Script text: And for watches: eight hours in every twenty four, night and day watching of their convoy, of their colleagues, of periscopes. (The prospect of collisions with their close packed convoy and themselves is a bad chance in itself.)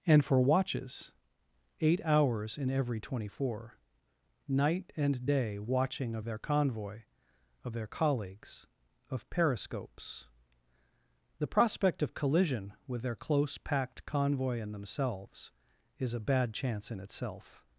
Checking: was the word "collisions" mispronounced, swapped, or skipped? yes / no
yes